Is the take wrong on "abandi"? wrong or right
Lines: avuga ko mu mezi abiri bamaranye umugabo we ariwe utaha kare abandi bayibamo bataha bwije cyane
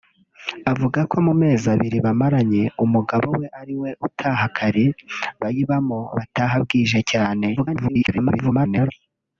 wrong